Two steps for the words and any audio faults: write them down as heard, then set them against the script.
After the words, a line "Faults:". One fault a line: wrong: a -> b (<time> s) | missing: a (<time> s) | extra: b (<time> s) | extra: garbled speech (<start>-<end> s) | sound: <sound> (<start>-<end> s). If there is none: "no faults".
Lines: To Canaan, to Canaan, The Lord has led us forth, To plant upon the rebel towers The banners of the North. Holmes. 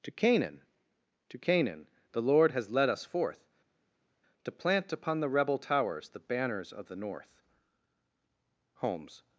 To Canaan, to Canaan, The Lord has led us forth, To plant upon the rebel towers The banners of the North. Holmes.
Faults:
no faults